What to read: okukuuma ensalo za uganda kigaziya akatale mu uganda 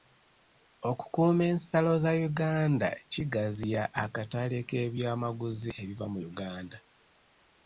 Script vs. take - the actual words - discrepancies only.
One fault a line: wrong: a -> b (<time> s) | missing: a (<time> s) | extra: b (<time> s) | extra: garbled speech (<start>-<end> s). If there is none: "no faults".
extra: k'ebyamaguzi ebiva (4.7 s)